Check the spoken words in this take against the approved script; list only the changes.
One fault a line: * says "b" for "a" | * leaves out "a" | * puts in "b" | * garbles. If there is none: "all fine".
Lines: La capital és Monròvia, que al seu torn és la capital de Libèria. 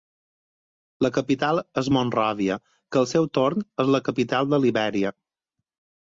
all fine